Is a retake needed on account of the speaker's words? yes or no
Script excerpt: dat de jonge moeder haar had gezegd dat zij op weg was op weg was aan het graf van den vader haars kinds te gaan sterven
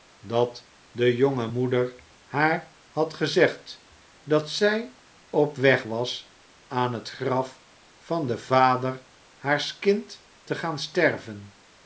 yes